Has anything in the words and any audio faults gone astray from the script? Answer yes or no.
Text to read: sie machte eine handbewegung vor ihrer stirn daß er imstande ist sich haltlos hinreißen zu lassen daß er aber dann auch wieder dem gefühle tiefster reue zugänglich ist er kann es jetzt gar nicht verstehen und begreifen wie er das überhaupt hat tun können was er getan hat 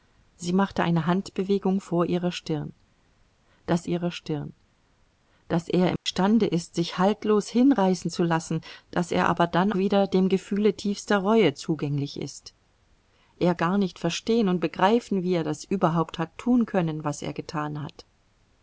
yes